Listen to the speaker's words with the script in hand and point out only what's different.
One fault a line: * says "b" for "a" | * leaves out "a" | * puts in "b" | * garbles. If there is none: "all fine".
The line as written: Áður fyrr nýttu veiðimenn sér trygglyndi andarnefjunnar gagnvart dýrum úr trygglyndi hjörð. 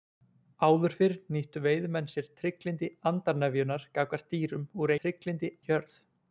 all fine